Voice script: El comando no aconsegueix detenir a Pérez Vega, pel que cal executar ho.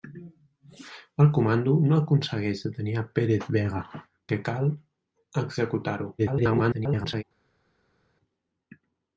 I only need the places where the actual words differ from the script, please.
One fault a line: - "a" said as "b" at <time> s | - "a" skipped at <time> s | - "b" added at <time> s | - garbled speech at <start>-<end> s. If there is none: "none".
- "pel" skipped at 3.8 s
- garbled speech at 6.2-7.2 s